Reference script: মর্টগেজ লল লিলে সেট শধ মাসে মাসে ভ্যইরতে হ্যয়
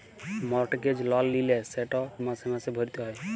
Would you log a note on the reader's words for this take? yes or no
yes